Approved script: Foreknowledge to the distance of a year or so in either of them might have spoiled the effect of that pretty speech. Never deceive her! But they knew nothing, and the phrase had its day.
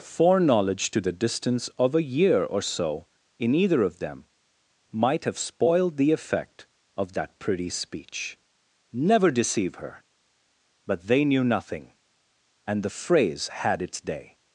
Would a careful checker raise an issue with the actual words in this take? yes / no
no